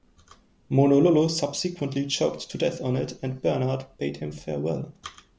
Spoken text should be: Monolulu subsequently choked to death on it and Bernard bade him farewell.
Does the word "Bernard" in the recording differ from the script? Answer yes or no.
no